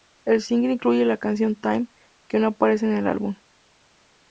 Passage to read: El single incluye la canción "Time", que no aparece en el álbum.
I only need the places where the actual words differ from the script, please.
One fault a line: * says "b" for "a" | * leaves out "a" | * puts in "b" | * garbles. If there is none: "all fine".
all fine